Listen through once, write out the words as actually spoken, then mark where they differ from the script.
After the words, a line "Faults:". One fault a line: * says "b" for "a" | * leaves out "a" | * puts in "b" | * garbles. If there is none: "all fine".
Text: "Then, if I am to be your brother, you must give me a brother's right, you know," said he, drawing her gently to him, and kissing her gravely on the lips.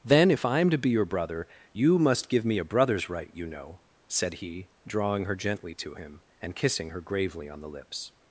"Then, if I am to be your brother, you must give me a brother's right, you know," said he, drawing her gently to him, and kissing her gravely on the lips.
Faults:
all fine